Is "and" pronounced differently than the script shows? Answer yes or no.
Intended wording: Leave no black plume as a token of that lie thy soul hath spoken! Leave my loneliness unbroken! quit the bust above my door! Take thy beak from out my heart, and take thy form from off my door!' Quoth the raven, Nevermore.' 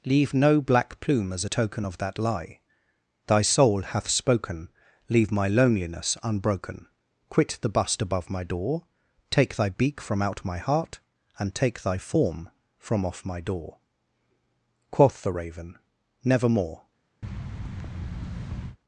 no